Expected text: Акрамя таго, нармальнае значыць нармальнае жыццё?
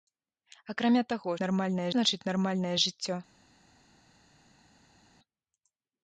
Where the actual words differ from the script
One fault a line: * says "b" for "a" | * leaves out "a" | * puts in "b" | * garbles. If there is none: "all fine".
all fine